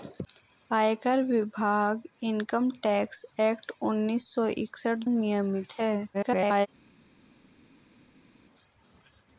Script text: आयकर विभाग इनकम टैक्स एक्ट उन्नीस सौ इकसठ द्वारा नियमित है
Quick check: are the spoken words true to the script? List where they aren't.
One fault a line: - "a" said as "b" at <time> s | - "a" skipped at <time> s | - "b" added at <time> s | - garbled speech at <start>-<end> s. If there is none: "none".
- "द्वारा" skipped at 5.1 s
- garbled speech at 6.1-6.7 s